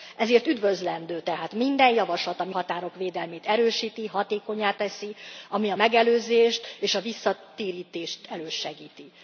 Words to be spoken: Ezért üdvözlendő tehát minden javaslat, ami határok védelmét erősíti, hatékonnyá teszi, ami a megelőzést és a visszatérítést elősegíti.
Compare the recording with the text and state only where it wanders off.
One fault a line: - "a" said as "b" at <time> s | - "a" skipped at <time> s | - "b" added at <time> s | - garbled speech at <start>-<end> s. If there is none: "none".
none